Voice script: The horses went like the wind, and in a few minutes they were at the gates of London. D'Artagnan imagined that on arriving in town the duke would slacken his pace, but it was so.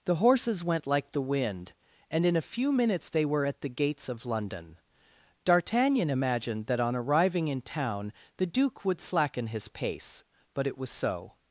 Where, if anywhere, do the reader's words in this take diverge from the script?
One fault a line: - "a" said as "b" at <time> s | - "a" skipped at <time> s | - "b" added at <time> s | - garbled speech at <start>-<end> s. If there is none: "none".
none